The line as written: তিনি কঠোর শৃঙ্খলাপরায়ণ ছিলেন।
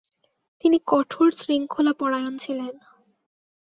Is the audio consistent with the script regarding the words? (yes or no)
yes